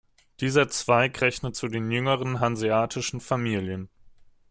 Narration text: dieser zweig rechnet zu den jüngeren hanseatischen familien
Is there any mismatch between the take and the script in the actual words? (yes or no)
no